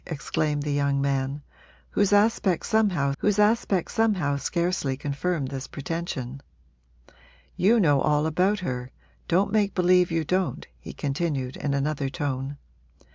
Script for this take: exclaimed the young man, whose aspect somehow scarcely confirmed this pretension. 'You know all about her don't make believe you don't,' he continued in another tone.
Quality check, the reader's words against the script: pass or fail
fail